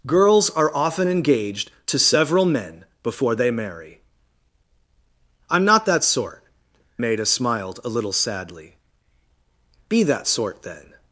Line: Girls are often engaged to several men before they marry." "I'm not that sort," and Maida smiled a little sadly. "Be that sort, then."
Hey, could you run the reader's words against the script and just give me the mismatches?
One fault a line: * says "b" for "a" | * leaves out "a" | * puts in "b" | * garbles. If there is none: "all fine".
* leaves out "and"